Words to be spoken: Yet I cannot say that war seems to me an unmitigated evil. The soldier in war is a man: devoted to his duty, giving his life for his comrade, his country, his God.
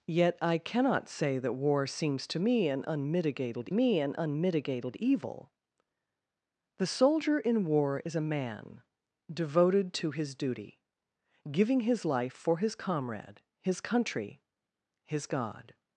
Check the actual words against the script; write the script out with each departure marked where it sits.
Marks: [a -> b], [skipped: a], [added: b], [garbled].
Yet I cannot say that war seems to me an unmitigated [added: me an unmitigated] evil. The soldier in war is a man: devoted to his duty, giving his life for his comrade, his country, his God.